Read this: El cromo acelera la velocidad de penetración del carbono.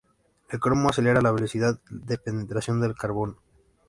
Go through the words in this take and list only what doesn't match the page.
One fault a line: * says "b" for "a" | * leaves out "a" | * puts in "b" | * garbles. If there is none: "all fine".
all fine